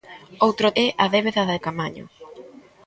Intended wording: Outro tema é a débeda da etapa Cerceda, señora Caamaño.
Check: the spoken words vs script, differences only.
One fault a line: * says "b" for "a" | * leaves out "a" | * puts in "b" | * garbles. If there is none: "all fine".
* leaves out "tema"
* leaves out "etapa Cerceda señora"